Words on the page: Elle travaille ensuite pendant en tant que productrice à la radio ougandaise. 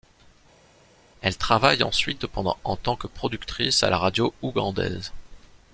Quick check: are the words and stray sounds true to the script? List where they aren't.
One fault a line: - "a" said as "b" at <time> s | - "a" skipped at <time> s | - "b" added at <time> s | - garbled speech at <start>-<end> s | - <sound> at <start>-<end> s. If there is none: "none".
none